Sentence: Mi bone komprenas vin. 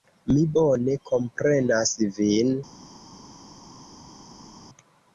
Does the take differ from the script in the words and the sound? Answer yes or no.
no